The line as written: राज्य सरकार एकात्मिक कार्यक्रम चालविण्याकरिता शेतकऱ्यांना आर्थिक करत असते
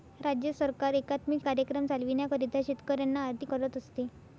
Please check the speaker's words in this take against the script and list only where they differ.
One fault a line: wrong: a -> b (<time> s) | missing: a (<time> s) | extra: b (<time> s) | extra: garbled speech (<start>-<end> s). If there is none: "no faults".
no faults